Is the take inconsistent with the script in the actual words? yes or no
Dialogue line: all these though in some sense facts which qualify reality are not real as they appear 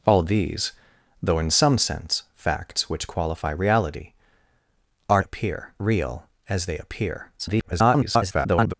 yes